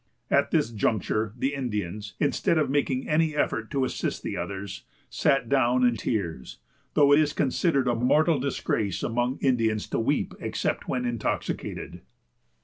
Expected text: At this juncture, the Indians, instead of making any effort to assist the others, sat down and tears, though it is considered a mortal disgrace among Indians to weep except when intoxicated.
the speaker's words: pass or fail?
pass